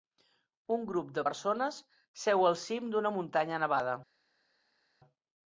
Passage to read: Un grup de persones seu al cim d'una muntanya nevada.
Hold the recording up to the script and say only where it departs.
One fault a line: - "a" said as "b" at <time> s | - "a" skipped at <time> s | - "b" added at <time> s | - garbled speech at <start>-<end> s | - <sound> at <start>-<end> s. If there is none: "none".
none